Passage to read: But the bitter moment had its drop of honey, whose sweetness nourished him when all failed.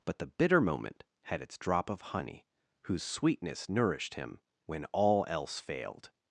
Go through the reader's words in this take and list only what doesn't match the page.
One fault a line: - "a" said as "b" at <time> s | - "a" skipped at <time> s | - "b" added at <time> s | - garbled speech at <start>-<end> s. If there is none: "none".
- "else" added at 5.3 s